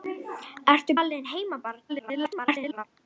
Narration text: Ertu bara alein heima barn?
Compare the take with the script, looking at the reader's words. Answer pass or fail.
fail